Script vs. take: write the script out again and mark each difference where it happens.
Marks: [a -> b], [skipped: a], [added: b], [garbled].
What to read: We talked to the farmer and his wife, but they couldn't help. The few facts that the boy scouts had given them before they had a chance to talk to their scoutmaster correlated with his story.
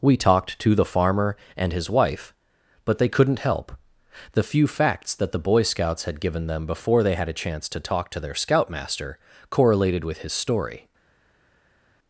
We talked to the farmer and his wife, but they couldn't help. The few facts that the boy scouts had given them before they had a chance to talk to their scoutmaster correlated with his story.